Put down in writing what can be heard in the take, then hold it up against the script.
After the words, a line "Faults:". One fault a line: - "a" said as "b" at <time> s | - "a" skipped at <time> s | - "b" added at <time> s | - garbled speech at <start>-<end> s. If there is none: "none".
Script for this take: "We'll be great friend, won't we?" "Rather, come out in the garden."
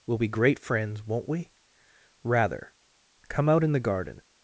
"We'll be great friends, won't we?" "Rather, come out in the garden."
Faults:
- "friend" said as "friends" at 0.6 s